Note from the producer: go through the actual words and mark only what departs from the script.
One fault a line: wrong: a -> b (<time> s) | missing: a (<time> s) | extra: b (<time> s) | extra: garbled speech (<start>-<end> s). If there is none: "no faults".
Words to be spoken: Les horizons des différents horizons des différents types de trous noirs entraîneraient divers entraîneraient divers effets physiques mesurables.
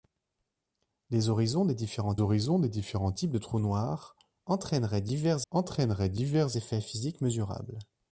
no faults